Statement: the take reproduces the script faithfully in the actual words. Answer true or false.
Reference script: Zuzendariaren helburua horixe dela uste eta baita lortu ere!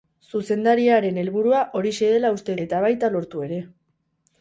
true